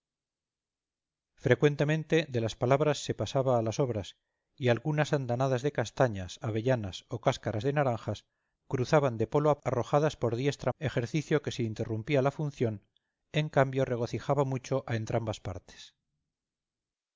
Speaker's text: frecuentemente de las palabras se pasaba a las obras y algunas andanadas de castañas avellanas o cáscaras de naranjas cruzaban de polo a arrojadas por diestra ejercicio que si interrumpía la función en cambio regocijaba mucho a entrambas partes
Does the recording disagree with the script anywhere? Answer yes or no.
no